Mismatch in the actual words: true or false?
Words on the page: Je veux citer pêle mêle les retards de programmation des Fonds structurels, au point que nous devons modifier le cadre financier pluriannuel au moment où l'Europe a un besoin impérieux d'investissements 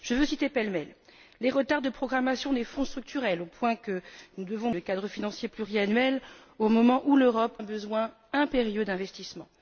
true